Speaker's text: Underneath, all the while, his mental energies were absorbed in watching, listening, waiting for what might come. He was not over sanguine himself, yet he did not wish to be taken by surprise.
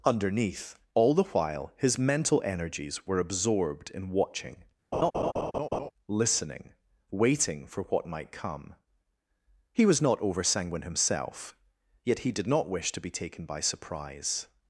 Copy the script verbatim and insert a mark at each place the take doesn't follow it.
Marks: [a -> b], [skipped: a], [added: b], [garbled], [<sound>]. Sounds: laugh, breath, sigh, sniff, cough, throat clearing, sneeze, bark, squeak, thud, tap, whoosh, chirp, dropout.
Underneath, all the while, his mental energies were absorbed in watching, [laugh] listening, waiting for what might come. He was not over sanguine himself, yet he did not wish to be taken by surprise.